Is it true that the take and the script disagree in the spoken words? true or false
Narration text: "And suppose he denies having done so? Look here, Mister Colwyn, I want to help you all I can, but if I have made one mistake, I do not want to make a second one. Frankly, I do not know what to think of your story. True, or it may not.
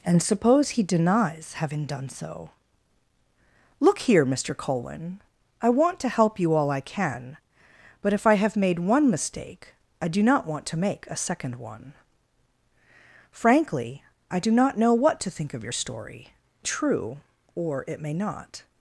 false